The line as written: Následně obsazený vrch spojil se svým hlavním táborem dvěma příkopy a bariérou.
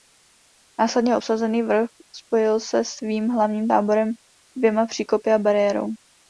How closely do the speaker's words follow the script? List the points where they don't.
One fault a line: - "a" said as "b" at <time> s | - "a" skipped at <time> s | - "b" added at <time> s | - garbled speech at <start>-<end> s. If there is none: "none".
none